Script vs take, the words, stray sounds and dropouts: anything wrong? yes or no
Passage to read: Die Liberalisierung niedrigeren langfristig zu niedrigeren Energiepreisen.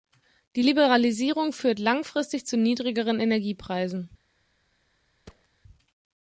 yes